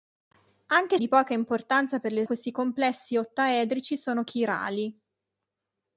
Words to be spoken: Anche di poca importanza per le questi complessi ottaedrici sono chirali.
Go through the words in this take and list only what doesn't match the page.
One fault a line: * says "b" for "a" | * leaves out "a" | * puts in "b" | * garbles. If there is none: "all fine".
all fine